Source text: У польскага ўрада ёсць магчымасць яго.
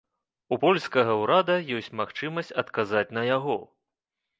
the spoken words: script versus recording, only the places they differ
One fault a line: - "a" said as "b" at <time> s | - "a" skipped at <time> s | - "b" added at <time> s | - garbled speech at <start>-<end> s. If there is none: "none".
- "адказаць на" added at 2.6 s